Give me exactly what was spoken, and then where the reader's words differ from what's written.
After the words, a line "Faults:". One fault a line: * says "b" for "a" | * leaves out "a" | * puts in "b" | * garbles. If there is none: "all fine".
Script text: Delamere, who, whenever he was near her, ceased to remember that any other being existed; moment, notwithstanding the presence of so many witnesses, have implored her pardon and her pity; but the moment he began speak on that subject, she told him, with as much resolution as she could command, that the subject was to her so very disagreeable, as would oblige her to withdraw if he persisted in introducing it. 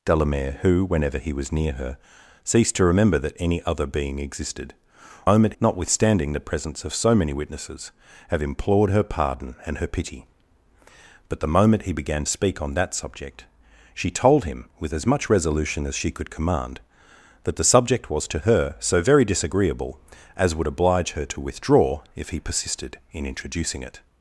Delamere, who, whenever he was near her, ceased to remember that any other being existed; moment, notwithstanding the presence of so many witnesses, have implored her pardon and her pity; but the moment he began speak on that subject, she told him, with as much resolution as she could command, that the subject was to her so very disagreeable, as would oblige her to withdraw if he persisted in introducing it.
Faults:
all fine